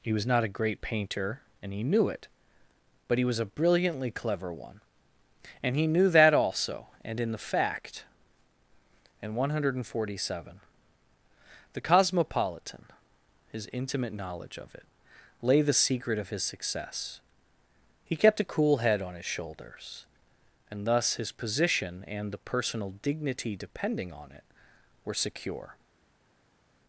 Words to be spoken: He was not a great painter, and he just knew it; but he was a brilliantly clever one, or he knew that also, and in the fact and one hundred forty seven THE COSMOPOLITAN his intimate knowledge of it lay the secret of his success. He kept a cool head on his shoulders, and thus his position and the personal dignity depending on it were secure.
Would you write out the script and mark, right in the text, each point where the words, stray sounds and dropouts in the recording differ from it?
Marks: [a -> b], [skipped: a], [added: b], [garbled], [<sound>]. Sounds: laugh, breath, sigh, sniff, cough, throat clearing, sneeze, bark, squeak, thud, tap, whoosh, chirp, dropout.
He was not a great painter, and he [skipped: just] knew it; but he was a brilliantly clever one, [or -> and] he knew that also, and in the fact and one hundred forty seven THE COSMOPOLITAN his intimate knowledge of it lay the secret of his success. He kept a cool head on his shoulders, and thus his position and the personal dignity depending on it were secure.